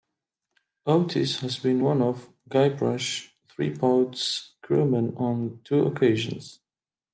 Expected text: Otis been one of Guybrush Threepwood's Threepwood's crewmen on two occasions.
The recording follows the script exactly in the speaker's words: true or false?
false